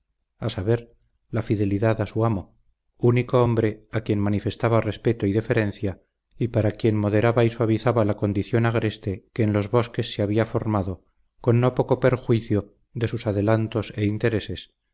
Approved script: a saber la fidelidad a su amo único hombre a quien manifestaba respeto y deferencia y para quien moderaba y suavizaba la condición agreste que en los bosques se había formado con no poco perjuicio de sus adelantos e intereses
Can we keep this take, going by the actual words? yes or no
yes